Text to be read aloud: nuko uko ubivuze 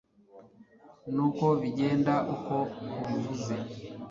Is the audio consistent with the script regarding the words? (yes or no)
no